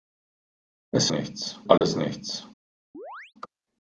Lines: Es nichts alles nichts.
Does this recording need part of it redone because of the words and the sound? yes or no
yes